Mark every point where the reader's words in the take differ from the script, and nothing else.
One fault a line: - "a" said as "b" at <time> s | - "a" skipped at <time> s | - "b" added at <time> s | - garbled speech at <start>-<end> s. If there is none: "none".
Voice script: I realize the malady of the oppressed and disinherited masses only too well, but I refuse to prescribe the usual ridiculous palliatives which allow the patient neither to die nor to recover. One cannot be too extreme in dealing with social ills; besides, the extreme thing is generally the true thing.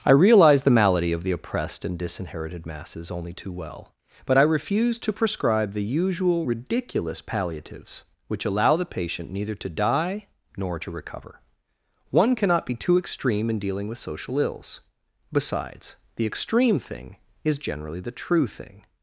none